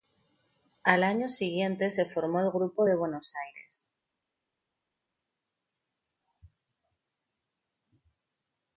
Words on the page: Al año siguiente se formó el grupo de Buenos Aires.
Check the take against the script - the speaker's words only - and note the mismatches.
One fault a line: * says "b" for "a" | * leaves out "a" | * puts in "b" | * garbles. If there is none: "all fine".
all fine